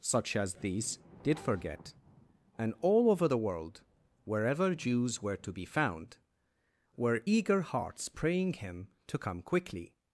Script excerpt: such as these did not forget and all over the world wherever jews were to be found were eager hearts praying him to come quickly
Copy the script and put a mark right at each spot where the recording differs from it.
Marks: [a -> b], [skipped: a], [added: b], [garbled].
such as these did [skipped: not] forget and all over the world wherever jews were to be found were eager hearts praying him to come quickly